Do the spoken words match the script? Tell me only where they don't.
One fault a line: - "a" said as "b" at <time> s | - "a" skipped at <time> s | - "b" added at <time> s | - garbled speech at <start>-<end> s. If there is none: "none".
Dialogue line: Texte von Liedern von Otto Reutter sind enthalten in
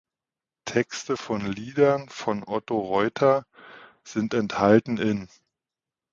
none